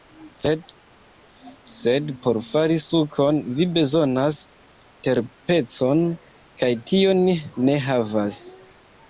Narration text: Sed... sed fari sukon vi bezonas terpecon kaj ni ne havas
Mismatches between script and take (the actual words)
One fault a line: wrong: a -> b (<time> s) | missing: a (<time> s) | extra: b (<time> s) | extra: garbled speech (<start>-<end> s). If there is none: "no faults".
extra: por (2.2 s)
extra: tion (7.0 s)